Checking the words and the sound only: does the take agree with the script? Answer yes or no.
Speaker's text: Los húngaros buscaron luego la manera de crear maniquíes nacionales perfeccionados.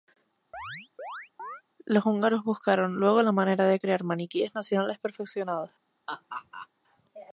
no